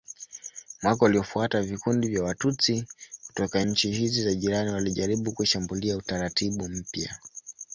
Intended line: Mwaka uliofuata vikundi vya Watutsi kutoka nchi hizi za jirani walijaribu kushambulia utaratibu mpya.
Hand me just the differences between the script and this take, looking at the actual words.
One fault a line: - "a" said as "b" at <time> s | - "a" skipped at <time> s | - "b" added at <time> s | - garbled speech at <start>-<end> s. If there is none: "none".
none